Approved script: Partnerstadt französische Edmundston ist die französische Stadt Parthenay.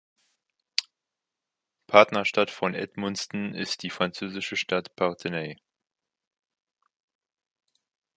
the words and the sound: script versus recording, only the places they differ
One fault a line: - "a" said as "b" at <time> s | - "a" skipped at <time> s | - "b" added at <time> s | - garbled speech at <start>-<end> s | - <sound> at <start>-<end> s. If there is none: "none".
- "französische" said as "von" at 2.5 s